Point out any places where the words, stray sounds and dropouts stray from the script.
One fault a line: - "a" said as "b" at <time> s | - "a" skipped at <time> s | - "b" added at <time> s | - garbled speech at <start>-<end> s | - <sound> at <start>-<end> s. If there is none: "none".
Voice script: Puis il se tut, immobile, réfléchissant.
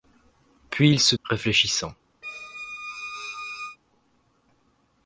- "tut immobile" skipped at 1.1 s
- squeak at 2.2-3.8 s